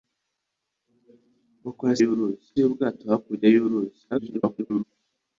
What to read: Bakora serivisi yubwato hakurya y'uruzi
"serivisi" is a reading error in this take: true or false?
true